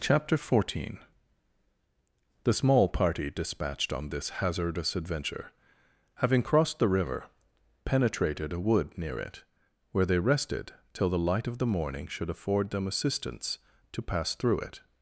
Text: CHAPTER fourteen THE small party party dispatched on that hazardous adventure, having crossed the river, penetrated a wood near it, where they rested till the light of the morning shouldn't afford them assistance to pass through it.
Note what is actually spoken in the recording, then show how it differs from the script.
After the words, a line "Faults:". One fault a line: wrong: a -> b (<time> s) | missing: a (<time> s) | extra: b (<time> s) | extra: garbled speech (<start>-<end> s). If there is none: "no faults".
CHAPTER fourteen THE small party dispatched on this hazardous adventure, having crossed the river, penetrated a wood near it, where they rested till the light of the morning should afford them assistance to pass through it.
Faults:
missing: party (3.3 s)
wrong: that -> this (4.1 s)
wrong: shouldn't -> should (12.1 s)